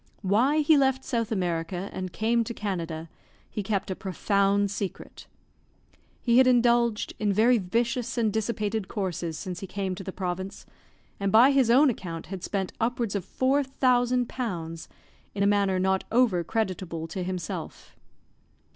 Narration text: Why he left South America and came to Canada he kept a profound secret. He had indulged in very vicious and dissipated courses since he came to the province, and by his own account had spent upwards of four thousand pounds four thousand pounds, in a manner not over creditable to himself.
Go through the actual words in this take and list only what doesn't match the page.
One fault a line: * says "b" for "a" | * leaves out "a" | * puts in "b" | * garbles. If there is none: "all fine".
* leaves out "four thousand pounds"